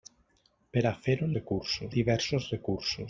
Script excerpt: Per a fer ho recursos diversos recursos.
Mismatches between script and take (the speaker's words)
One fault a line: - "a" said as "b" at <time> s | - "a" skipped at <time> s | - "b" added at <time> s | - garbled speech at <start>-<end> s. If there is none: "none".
none